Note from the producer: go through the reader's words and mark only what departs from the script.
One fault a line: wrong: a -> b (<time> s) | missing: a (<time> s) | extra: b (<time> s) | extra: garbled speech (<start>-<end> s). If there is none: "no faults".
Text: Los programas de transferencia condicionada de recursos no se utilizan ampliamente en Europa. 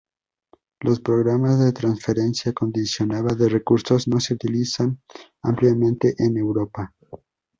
no faults